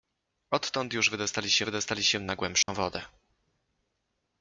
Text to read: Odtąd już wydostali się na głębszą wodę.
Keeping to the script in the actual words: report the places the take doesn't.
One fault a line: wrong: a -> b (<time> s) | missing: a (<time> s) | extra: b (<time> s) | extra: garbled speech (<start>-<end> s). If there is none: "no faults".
extra: wydostali się (1.6 s)